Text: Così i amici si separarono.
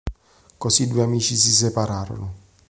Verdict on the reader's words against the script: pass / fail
fail